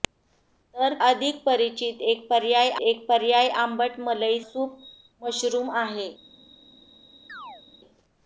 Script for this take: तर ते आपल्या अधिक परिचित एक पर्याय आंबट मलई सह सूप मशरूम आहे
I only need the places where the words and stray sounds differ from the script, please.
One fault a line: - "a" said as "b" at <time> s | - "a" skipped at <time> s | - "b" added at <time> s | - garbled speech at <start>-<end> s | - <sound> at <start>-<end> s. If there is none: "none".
- "ते आपल्या" skipped at 0.9 s
- "एक पर्याय" added at 2.8 s
- "सह" skipped at 4.4 s
- chirp at 7.3-7.6 s